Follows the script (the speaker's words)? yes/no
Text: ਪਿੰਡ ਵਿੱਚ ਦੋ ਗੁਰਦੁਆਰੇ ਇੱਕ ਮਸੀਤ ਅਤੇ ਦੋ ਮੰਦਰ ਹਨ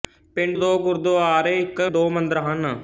no